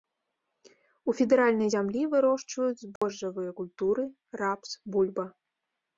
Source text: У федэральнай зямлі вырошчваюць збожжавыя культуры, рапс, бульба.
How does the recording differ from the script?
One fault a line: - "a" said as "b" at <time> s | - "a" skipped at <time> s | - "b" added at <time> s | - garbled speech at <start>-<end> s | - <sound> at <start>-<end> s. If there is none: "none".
- dropout at 3.0-3.0 s